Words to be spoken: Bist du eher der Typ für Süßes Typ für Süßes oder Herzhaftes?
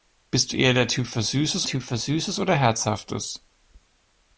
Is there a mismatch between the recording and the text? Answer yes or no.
no